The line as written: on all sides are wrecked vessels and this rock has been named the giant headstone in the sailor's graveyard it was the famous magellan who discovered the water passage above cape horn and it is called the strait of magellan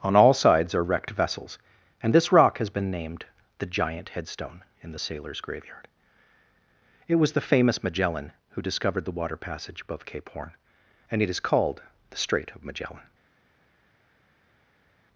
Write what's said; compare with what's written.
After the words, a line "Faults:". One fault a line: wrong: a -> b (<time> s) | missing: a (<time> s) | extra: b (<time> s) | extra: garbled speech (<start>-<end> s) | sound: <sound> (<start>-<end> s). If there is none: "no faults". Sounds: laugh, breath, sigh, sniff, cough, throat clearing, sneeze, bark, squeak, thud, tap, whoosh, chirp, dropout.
on all sides are wrecked vessels and this rock has been named the giant headstone in the sailor's graveyard it was the famous magellan who discovered the water passage above cape horn and it is called the strait of magellan
Faults:
no faults